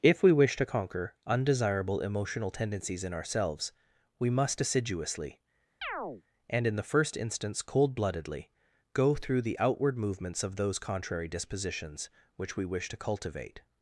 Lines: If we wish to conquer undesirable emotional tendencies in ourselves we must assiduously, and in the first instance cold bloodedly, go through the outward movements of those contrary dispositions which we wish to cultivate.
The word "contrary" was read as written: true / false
true